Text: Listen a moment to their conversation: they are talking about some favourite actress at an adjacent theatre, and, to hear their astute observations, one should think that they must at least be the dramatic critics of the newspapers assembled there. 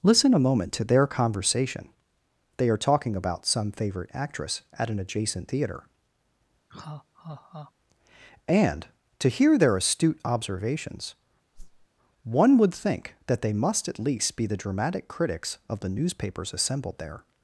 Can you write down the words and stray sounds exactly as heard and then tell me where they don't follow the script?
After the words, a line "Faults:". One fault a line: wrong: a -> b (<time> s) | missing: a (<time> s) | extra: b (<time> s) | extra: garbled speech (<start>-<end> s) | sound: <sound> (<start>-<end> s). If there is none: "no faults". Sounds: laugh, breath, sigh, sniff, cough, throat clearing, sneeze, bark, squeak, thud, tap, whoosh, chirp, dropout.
Listen a moment to their conversation: they are talking about some favourite actress at an adjacent theatre, and, to hear their astute observations, one would think that they must at least be the dramatic critics of the newspapers assembled there.
Faults:
sound: laugh (6.7-7.7 s)
sound: whoosh (11.5-11.9 s)
wrong: should -> would (12.6 s)